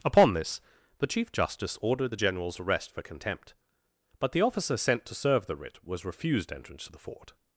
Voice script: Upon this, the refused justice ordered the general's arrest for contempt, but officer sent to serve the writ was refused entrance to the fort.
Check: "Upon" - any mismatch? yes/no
no